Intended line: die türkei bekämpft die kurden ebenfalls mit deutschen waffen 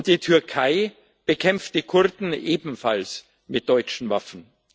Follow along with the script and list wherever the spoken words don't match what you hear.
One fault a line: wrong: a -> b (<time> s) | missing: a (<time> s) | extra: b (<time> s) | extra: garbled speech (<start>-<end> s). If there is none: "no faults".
no faults